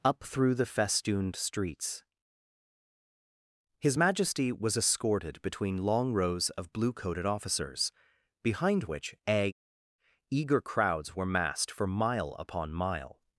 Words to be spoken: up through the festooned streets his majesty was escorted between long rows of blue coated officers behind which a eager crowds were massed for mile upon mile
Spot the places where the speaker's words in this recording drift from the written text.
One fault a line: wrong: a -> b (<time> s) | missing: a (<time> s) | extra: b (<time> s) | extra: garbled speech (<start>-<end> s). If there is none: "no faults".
no faults